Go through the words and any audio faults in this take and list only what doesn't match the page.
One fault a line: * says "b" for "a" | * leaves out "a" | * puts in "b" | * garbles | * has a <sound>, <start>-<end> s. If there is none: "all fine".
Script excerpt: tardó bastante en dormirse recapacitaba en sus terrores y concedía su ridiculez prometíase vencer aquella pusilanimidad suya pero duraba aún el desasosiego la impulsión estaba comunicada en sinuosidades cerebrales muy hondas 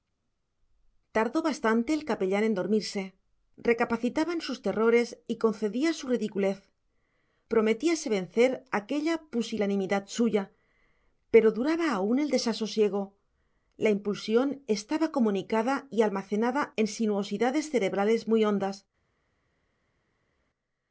* puts in "el capellán"
* puts in "y almacenada"